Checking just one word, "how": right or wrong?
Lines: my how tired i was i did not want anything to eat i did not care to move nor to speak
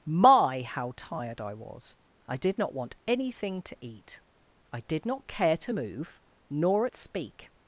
right